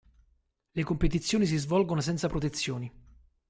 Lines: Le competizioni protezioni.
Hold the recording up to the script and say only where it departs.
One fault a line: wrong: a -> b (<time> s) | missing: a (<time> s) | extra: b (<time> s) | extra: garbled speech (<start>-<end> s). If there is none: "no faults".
extra: si svolgono senza (1.4 s)